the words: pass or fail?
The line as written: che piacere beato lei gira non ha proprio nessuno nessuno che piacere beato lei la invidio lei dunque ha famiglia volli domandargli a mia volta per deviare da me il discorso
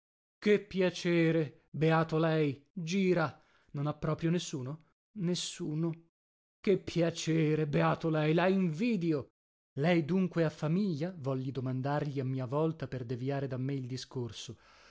pass